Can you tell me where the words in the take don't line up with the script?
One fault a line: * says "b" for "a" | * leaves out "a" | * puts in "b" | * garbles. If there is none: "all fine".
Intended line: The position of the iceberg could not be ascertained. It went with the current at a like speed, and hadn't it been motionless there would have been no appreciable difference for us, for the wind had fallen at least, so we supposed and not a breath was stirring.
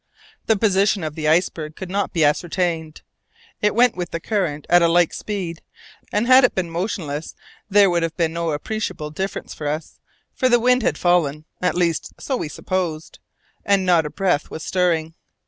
* says "had" for "hadn't"